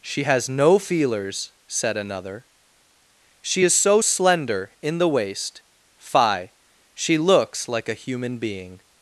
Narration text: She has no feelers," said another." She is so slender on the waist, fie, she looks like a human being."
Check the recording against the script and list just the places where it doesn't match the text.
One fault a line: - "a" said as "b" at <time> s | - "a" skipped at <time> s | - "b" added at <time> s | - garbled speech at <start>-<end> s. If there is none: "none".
- "on" said as "in" at 4.8 s